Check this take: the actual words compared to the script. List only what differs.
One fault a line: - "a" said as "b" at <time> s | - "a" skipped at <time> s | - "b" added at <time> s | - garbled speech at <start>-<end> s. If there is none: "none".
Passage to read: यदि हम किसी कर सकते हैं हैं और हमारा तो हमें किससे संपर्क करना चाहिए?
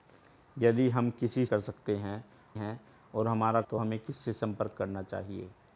none